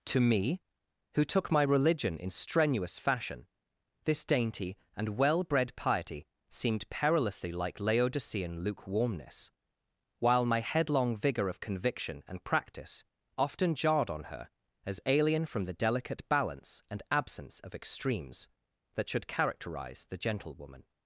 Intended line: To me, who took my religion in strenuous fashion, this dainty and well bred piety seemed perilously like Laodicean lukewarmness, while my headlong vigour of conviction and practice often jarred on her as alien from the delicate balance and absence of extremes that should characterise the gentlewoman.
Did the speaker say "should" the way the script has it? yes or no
yes